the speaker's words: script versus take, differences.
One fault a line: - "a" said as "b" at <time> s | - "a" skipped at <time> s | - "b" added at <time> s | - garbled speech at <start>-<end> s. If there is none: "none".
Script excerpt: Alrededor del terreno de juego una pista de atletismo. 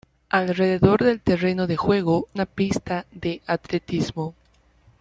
none